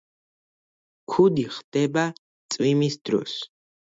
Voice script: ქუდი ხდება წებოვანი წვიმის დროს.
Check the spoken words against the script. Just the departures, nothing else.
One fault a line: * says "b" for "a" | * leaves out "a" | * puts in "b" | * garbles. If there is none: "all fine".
* leaves out "წებოვანი"